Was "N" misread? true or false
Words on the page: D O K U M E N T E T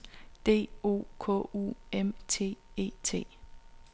true